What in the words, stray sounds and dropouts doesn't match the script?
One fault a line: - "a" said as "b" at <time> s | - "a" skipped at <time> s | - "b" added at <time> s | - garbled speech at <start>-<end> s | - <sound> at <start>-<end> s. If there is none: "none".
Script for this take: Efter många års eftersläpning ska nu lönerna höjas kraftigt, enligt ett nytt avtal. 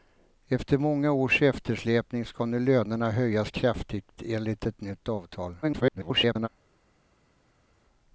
- garbled speech at 5.6-6.5 s